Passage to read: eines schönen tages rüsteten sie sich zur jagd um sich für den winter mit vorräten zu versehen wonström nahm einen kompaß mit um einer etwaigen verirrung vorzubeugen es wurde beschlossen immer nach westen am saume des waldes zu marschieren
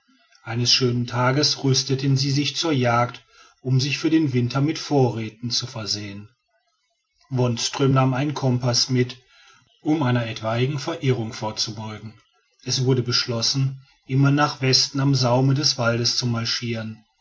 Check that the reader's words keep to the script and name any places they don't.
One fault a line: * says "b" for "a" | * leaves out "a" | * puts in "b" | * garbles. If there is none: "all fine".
all fine